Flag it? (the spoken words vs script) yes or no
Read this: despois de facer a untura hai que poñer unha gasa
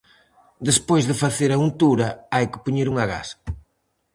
no